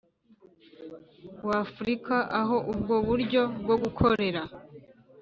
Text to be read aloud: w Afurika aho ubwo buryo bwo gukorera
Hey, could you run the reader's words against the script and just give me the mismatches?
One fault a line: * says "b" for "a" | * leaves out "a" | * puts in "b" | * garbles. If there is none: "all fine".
all fine